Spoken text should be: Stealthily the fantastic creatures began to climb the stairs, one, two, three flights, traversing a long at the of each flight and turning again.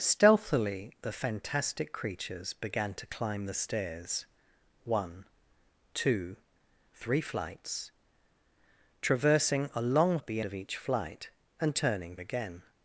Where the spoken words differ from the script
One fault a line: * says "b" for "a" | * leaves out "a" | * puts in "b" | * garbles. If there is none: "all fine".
all fine